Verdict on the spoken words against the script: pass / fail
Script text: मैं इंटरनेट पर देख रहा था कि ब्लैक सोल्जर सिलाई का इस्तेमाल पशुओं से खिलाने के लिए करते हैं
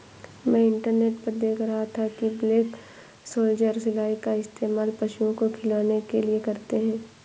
fail